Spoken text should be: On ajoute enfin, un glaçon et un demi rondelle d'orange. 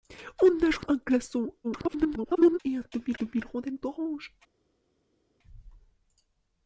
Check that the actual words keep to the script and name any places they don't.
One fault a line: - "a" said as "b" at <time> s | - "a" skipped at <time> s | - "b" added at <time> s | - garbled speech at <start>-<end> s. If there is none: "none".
- "enfin" skipped at 0.9 s
- garbled speech at 1.6-2.6 s
- "demi" added at 3.2 s